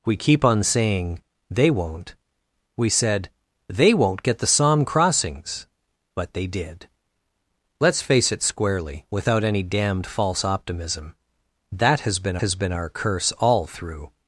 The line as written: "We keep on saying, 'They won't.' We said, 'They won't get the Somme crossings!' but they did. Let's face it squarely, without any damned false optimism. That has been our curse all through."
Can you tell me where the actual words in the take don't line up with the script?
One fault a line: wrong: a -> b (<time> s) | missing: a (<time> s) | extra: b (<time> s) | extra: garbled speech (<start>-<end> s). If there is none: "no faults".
extra: has been (12.4 s)